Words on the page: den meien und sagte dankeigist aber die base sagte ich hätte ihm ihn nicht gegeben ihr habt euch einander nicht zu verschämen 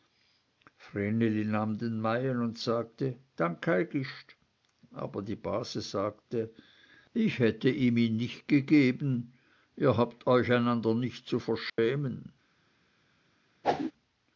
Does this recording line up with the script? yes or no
yes